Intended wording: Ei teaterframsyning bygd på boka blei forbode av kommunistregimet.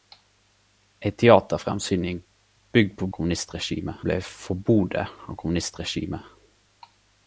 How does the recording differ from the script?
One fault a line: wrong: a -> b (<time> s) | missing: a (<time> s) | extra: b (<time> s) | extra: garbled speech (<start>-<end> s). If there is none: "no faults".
wrong: boka -> kommunistregimet (3.1 s)